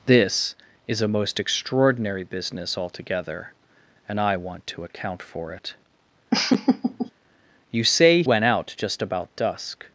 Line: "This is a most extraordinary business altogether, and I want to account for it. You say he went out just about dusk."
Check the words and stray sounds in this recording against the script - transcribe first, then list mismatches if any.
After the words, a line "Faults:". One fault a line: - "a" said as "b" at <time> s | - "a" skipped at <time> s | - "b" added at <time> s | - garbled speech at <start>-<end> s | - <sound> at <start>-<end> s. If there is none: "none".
"This is a most extraordinary business altogether, and I want to account for it. You say went out just about dusk."
Faults:
- laugh at 6.3-7.1 s
- "he" skipped at 8.2 s